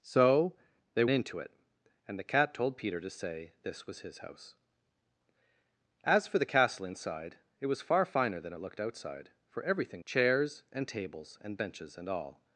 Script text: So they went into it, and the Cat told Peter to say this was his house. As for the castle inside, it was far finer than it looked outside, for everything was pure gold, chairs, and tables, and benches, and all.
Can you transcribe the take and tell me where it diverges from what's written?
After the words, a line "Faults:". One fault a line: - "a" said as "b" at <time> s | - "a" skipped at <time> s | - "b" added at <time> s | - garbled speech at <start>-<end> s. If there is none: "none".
So they into it, and the Cat told Peter to say this was his house. As for the castle inside, it was far finer than it looked outside, for everything chairs, and tables, and benches, and all.
Faults:
- "went" skipped at 1.1 s
- "was pure gold" skipped at 10.0 s